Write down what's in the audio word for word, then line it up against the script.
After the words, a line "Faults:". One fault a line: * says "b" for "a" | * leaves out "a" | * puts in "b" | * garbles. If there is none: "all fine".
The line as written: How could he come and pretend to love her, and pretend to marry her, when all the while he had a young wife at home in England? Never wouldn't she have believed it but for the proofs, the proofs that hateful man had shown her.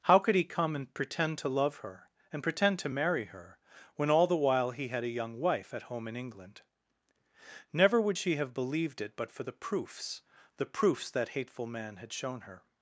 How could he come and pretend to love her, and pretend to marry her, when all the while he had a young wife at home in England? Never would she have believed it but for the proofs, the proofs that hateful man had shown her.
Faults:
* says "would" for "wouldn't"